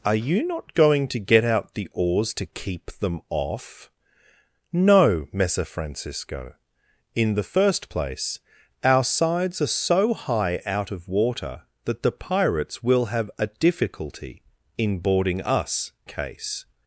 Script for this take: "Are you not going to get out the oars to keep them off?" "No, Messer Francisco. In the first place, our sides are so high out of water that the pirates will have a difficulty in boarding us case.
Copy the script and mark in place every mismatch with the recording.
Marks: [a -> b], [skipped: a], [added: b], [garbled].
"Are you not going to get out the oars to keep them off?" "No, Messer Francisco. In the first place, our sides are so high out of water that the pirates will have a difficulty in boarding us case.